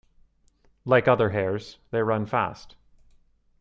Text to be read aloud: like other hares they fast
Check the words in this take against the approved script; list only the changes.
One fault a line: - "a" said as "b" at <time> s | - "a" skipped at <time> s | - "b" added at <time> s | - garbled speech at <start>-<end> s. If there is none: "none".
- "run" added at 2.0 s